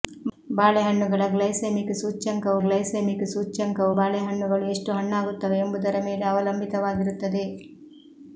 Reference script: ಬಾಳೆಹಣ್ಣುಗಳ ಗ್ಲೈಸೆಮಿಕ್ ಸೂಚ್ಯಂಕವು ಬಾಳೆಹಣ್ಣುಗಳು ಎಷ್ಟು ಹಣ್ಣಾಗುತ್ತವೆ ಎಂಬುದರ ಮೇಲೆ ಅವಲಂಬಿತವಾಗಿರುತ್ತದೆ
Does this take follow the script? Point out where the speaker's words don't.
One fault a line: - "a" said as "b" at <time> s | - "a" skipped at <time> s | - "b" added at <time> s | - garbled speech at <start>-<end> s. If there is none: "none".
- "ಗ್ಲೈಸೆಮಿಕ್ ಸೂಚ್ಯಂಕವು" added at 2.6 s